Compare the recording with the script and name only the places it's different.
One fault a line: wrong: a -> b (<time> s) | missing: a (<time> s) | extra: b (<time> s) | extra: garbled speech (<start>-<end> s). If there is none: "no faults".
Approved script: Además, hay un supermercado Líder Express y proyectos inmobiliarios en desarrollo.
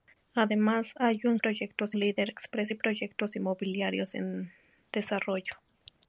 wrong: supermercado -> proyectos (1.3 s)